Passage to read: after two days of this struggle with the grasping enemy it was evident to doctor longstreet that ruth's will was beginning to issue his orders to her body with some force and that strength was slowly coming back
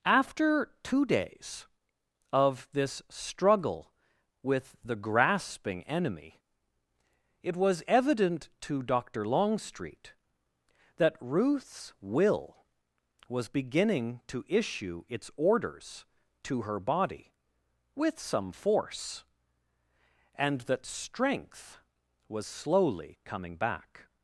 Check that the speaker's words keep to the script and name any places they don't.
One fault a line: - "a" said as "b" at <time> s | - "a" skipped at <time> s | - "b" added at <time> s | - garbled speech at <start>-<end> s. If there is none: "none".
- "his" said as "its" at 15.1 s